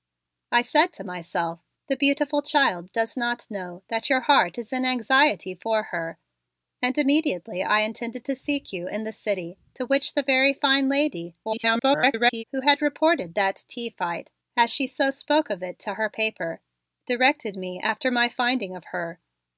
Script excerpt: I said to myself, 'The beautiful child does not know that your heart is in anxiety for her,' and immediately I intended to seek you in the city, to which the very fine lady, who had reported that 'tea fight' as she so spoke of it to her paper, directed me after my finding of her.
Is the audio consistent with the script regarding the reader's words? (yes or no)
no